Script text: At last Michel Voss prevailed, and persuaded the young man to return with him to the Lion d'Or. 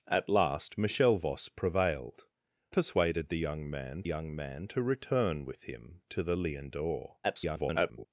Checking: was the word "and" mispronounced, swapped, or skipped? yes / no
yes